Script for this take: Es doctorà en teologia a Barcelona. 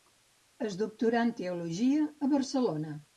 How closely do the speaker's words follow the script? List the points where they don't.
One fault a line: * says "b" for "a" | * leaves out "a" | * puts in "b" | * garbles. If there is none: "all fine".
all fine